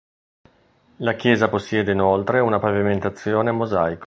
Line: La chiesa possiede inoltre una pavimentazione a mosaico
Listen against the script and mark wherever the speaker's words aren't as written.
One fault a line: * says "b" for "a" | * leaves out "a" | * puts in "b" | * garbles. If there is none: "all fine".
all fine